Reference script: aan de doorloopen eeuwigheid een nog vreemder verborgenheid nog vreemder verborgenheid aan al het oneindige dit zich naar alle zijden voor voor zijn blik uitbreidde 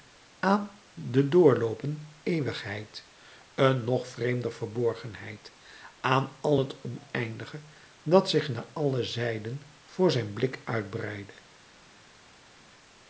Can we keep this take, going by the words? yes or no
no